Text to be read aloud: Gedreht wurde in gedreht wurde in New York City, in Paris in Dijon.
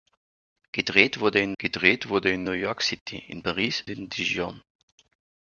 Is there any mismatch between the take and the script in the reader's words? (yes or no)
no